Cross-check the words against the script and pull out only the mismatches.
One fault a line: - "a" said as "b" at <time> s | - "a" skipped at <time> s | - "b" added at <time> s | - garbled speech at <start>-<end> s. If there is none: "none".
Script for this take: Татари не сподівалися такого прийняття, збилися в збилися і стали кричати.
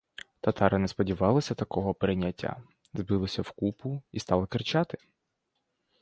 - "збилися" said as "купу" at 3.5 s